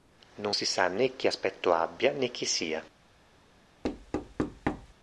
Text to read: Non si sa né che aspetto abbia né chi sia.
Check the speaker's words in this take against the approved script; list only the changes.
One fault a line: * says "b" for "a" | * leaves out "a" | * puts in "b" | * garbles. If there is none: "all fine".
all fine